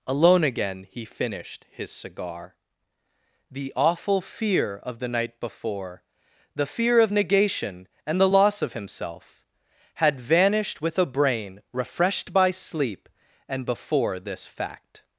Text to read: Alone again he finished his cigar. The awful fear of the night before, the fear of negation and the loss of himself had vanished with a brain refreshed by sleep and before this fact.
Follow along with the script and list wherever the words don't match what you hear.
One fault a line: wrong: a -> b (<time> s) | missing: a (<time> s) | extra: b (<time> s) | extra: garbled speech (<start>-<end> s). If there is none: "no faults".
no faults